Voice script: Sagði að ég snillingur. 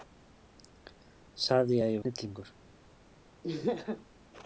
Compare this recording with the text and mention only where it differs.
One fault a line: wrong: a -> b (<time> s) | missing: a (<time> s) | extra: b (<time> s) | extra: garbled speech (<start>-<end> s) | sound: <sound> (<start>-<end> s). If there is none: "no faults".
sound: laugh (3.4-4.1 s)